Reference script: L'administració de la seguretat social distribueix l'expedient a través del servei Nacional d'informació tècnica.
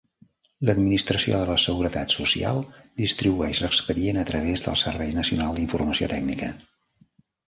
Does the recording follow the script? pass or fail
pass